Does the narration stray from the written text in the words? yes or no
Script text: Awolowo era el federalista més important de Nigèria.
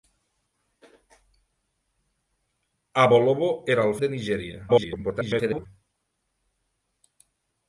yes